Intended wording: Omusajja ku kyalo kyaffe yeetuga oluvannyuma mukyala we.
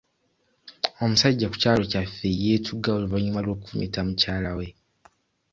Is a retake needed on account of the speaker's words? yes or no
yes